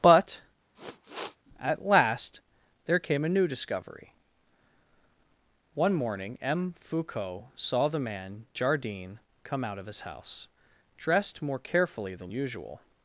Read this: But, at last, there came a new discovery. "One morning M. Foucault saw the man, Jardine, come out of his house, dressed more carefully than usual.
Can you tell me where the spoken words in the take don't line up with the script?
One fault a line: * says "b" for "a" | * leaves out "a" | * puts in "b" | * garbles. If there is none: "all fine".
all fine